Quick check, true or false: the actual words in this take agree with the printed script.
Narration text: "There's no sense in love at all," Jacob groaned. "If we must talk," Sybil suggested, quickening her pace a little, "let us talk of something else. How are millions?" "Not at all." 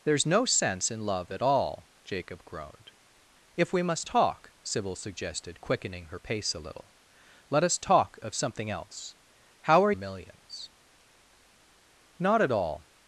true